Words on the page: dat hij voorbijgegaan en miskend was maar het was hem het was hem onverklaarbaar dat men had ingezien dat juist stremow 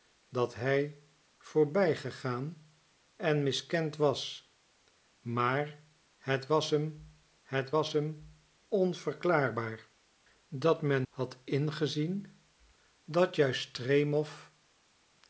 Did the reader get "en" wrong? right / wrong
right